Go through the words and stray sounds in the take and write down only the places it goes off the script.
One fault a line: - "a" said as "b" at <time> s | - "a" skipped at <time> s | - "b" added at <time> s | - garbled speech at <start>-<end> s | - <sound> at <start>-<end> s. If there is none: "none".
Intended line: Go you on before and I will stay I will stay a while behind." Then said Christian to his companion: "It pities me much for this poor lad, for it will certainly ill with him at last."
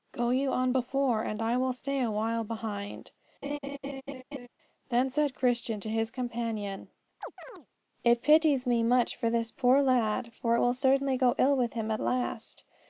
- "I will stay" skipped at 2.0 s
- laugh at 3.4-4.5 s
- chirp at 7.2-7.7 s
- "go" added at 11.2 s